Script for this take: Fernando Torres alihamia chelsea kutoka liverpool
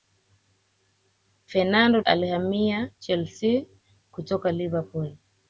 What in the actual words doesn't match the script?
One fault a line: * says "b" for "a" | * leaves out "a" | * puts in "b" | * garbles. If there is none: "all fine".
* leaves out "Torres"